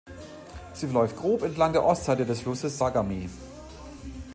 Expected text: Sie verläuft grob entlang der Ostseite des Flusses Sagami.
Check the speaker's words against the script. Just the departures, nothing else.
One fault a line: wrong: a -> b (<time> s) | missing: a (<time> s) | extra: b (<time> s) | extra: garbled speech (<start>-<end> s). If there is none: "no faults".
no faults